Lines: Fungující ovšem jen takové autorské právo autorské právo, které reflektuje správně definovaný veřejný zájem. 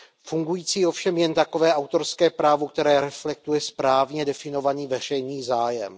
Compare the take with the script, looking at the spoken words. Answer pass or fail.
fail